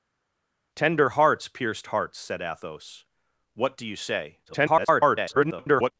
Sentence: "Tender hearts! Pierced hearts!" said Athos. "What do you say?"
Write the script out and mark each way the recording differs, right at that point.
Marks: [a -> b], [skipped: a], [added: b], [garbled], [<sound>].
"Tender hearts! Pierced hearts!" said Athos. "What do you say?" [garbled]